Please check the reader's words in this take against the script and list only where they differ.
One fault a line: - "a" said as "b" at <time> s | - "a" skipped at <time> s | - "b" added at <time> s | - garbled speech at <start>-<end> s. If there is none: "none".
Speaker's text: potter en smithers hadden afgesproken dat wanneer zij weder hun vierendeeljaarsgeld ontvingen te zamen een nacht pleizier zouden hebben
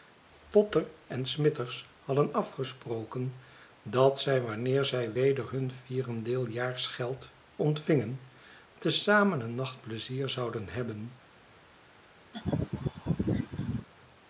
- "zij" added at 4.2 s